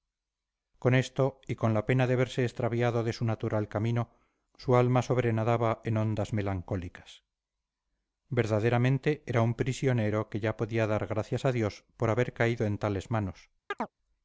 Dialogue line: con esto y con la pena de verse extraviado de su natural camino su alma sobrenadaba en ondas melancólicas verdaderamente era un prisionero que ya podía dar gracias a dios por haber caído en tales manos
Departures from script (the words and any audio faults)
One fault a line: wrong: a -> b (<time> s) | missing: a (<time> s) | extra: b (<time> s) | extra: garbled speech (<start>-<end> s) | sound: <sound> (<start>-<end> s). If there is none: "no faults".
sound: chirp (13.7-13.9 s)